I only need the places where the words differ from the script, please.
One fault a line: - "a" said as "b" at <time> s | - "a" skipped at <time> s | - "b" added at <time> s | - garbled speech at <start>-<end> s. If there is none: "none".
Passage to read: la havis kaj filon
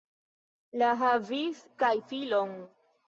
none